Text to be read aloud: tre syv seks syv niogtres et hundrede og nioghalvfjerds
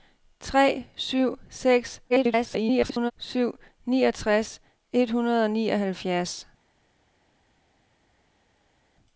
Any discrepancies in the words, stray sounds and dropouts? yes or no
yes